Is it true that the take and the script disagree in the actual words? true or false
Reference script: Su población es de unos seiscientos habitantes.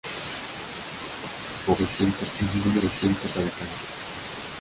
true